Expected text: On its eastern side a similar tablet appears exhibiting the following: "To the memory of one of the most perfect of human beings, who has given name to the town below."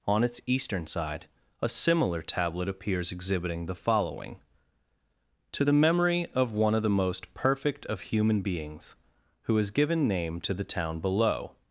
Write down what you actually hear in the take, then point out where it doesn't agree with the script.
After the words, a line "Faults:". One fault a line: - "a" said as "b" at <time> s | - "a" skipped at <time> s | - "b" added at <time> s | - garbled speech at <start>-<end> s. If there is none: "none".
On its eastern side a similar tablet appears exhibiting the following: "To the memory of one of the most perfect of human beings, who has given name to the town below."
Faults:
none